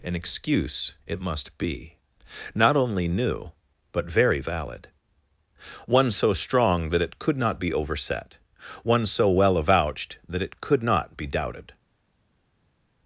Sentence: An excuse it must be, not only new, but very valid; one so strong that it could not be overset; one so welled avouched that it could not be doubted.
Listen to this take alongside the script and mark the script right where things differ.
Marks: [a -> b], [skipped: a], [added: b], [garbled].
An excuse it must be, not only new, but very valid; one so strong that it could not be overset; one so [welled -> well] avouched that it could not be doubted.